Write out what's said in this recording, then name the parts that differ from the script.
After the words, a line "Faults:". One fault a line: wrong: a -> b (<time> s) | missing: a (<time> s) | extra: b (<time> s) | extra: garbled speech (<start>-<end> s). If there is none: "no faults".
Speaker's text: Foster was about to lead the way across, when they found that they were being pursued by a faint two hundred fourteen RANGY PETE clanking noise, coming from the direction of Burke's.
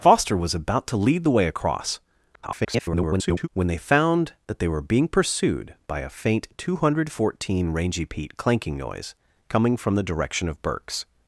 Foster was about to lead the way across, [garbled] when they found that they were being pursued by a faint two hundred fourteen RANGY PETE clanking noise, coming from the direction of Burke's.
Faults:
extra: garbled speech (2.3-3.5 s)